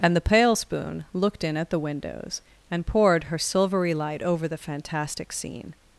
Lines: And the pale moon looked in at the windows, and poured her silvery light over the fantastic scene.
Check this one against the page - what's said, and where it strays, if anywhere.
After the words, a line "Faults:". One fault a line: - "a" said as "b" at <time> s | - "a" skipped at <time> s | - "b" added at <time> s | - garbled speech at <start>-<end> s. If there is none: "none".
And the pale spoon looked in at the windows, and poured her silvery light over the fantastic scene.
Faults:
- "moon" said as "spoon" at 0.5 s